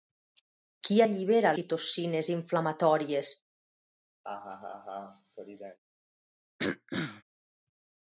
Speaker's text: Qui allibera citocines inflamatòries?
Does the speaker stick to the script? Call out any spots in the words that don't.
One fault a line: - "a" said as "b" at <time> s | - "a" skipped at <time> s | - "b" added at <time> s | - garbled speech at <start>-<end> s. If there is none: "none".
none